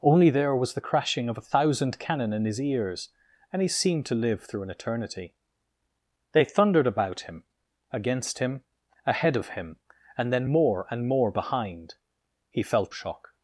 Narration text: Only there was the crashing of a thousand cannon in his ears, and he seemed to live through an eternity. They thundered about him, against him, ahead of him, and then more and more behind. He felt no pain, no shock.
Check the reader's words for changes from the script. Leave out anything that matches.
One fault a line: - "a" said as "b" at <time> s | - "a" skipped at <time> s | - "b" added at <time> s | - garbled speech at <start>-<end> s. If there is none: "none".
- "no pain no" skipped at 12.9 s